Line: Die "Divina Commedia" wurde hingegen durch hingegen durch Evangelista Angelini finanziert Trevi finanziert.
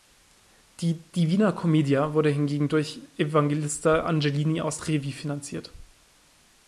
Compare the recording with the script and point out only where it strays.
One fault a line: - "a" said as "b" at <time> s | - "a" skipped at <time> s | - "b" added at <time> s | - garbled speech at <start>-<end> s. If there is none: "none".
- "hingegen durch" skipped at 3.0 s
- "finanziert" said as "aus" at 4.6 s